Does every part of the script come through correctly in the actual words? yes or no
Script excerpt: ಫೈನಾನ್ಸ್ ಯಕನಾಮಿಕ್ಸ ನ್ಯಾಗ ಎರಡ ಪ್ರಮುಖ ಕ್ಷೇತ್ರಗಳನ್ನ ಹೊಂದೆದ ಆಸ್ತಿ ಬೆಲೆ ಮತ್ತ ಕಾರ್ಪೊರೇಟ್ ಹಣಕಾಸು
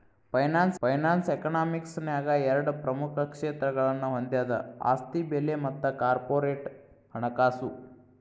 no